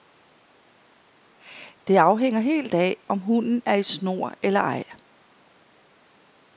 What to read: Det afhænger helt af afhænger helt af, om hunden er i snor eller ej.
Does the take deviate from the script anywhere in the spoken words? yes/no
yes